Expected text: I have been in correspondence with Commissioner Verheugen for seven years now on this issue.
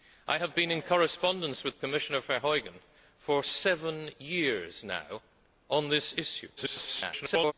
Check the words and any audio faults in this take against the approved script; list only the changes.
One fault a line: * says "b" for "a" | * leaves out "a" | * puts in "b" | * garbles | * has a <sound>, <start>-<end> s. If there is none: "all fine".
* garbles